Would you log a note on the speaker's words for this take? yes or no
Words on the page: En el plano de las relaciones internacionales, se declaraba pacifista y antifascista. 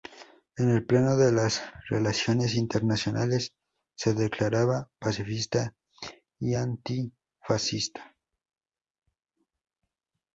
no